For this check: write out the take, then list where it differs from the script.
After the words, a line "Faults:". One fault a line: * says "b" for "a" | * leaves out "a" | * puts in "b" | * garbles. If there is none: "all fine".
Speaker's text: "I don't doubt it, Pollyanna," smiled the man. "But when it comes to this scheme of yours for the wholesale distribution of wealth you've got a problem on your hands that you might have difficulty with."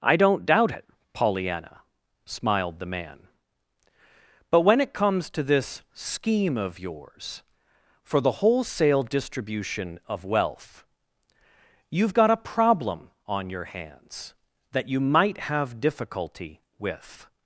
"I don't doubt it, Pollyanna," smiled the man. "But when it comes to this scheme of yours for the wholesale distribution of wealth you've got a problem on your hands that you might have difficulty with."
Faults:
all fine